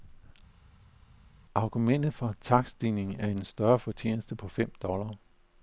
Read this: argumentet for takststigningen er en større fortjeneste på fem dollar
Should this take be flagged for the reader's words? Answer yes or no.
no